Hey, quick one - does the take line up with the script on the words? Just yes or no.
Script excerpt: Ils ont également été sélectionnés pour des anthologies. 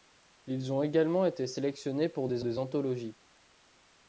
no